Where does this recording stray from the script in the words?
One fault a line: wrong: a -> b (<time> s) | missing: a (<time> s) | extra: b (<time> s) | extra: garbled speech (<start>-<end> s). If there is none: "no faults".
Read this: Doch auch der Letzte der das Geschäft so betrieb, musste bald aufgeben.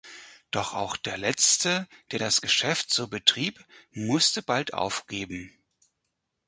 no faults